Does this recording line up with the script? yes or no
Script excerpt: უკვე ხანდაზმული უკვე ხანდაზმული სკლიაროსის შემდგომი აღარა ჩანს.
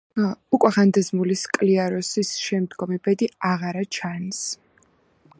no